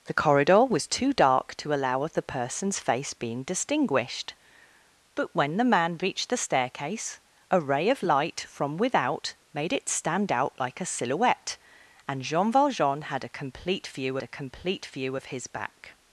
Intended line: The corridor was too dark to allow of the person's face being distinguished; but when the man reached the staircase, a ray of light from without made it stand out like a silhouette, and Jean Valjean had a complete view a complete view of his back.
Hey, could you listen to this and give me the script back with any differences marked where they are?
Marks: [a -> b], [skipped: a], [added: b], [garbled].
The corridor was too dark to allow of the person's face being distinguished; but when the man reached the staircase, a ray of light from without made it stand out like a silhouette, and Jean Valjean had a complete view a complete view of his back.